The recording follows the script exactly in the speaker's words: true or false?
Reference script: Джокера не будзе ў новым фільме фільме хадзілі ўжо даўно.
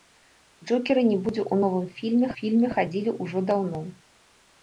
true